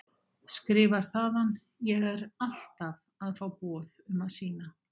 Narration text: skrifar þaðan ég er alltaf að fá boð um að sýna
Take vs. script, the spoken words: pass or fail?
pass